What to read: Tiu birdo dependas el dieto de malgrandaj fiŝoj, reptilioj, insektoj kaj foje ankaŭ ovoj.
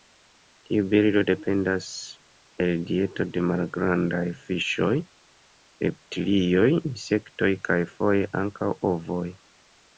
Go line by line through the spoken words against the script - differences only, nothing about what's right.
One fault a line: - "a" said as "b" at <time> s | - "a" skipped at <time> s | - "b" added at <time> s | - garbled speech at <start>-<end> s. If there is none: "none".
none